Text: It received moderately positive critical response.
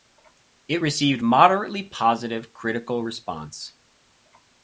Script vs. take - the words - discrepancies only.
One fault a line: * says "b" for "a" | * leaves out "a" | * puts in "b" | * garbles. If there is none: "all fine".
all fine